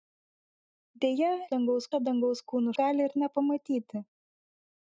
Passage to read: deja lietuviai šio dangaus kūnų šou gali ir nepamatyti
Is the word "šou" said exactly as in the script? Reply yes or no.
no